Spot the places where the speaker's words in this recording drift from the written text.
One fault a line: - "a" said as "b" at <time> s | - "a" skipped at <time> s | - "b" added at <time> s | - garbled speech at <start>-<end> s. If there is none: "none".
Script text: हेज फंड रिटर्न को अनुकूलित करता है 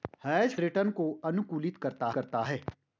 - "फंड" skipped at 0.6 s
- "करता" added at 2.1 s